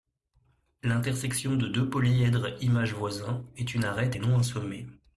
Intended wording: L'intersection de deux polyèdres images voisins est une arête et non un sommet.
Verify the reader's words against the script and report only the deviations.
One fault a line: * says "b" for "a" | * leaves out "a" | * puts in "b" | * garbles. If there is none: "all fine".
all fine